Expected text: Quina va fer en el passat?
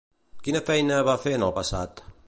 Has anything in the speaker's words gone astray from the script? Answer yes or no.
yes